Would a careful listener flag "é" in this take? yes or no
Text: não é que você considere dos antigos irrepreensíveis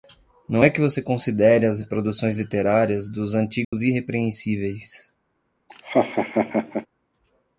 no